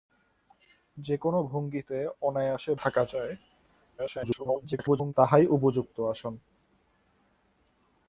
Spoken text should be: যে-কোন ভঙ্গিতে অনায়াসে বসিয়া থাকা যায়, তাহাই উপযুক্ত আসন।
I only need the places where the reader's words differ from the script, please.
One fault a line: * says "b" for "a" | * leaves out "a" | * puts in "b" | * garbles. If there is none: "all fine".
* leaves out "বসিয়া"
* garbles